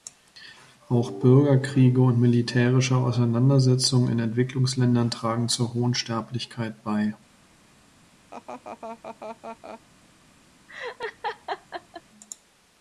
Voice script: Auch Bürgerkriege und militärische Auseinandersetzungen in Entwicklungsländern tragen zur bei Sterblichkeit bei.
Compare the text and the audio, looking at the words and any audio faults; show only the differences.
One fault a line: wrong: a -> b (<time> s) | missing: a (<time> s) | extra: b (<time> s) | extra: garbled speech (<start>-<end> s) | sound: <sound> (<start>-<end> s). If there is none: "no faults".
wrong: bei -> hohen (5.8 s)
sound: laugh (8.3-9.8 s)
sound: laugh (10.7-12.0 s)